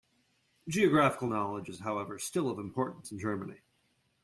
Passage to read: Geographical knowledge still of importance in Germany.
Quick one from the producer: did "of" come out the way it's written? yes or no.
yes